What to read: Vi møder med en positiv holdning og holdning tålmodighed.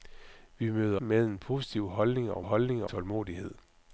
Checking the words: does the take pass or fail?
pass